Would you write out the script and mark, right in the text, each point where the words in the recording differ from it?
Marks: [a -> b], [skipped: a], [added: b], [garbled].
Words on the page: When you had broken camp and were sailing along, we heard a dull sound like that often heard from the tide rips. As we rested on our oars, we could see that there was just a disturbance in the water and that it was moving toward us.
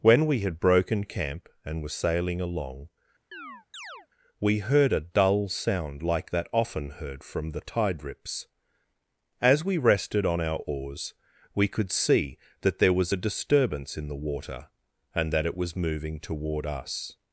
When [you -> we] had broken camp and were sailing along, we heard a dull sound like that often heard from the tide rips. As we rested on our oars, we could see that there was [skipped: just] a disturbance in the water and that it was moving toward us.